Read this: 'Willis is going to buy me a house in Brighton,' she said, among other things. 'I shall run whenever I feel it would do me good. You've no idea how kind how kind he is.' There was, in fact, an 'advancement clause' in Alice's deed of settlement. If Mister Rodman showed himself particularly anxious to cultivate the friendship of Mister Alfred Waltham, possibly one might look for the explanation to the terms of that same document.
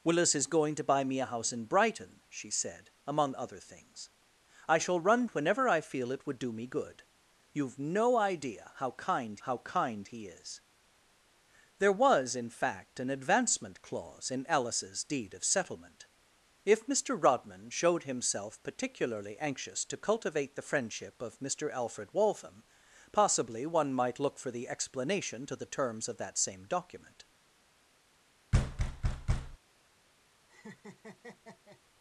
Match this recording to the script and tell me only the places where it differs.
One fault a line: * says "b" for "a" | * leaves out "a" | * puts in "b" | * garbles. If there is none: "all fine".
all fine